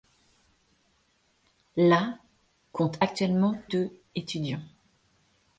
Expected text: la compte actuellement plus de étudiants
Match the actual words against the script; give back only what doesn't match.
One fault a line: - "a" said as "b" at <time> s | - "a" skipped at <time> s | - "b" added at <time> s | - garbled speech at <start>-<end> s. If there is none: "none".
- "plus" skipped at 3.6 s